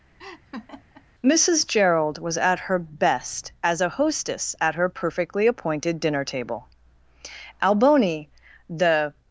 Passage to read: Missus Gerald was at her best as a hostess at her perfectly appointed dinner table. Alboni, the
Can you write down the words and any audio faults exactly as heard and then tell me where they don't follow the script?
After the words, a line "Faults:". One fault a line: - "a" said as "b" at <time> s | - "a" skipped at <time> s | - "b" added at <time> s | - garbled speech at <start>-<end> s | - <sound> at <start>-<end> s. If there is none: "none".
Missus Gerald was at her best as a hostess at her perfectly appointed dinner table. Alboni, the
Faults:
- laugh at 0.2-1.0 s